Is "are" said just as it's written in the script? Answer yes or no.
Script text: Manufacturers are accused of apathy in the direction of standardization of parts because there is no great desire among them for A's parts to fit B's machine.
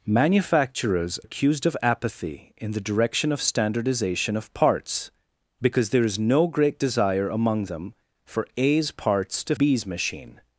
no